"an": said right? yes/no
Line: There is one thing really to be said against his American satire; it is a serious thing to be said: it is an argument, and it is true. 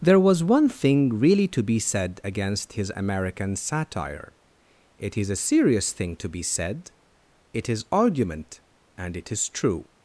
no